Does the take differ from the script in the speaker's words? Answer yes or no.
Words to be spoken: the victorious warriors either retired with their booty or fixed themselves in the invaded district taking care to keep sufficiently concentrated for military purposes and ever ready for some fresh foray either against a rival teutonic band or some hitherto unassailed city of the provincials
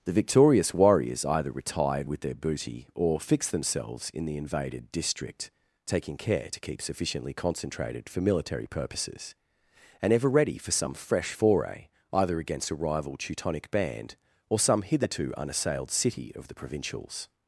no